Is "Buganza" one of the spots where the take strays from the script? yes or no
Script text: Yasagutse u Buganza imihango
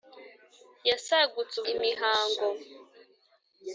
yes